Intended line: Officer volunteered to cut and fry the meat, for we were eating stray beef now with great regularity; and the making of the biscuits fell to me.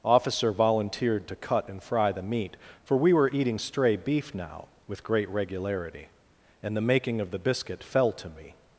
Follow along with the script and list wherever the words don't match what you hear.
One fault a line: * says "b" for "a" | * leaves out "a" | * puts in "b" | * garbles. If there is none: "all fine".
* says "biscuit" for "biscuits"